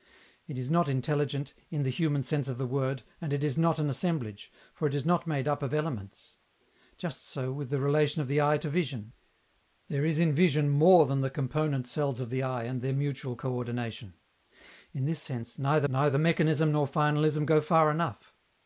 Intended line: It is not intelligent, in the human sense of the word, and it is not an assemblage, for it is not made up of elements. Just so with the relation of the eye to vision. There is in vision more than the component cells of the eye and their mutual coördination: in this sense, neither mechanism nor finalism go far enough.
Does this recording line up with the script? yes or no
no